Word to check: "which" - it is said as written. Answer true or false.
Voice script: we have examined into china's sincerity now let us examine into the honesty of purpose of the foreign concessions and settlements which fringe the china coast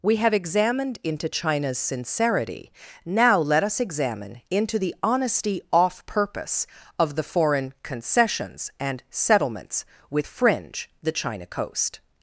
false